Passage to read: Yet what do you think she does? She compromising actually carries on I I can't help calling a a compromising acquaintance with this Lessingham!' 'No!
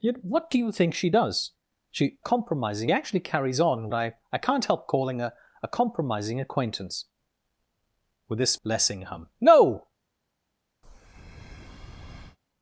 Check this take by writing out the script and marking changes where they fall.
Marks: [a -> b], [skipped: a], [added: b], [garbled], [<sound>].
Yet what do you think she does? She compromising actually carries on I I can't help calling a a compromising acquaintance with this Lessingham!' 'No! [breath]